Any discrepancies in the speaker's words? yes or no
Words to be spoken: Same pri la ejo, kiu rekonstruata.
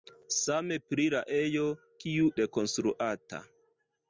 no